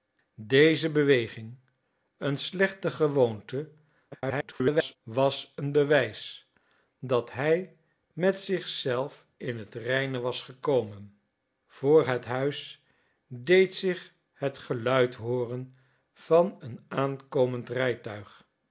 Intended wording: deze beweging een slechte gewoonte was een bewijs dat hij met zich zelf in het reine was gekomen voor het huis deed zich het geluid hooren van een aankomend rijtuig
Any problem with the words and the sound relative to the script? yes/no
yes